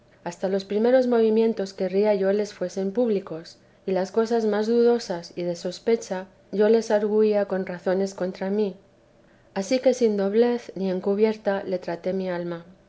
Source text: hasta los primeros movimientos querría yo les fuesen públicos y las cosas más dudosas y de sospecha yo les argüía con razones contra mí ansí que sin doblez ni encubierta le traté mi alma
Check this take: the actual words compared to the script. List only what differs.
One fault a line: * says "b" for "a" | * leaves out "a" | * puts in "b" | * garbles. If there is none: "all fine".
all fine